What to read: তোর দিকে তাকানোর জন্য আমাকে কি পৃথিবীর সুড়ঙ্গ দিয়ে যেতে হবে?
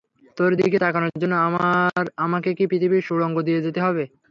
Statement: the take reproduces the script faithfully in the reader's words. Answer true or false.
true